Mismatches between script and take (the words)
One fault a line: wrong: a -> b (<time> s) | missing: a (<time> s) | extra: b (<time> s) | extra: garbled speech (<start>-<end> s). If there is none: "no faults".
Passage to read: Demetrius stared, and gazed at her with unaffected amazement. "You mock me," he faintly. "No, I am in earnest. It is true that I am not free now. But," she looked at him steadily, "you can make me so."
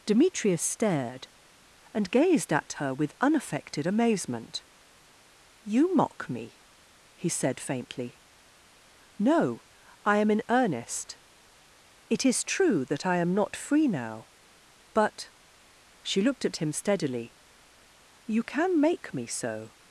extra: said (7.3 s)